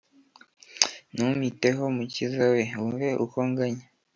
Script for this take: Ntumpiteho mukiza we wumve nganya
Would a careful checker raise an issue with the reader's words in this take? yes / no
yes